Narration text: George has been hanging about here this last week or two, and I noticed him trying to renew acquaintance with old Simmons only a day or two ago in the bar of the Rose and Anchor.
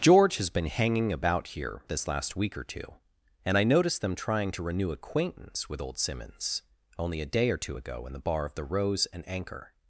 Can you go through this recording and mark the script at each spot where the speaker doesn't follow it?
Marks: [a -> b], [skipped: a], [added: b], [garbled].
George has been hanging about here this last week or two, and I noticed [him -> them] trying to renew acquaintance with old Simmons only a day or two ago in the bar of the Rose and Anchor.